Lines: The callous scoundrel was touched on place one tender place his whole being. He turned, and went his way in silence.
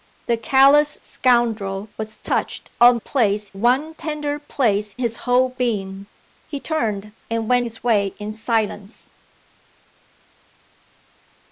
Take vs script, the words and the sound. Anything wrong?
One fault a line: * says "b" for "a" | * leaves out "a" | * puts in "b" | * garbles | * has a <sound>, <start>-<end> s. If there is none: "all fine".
all fine